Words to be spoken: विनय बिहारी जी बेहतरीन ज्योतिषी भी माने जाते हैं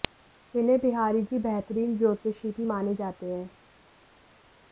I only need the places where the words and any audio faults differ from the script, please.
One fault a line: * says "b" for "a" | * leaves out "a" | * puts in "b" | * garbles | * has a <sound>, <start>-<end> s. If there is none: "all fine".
all fine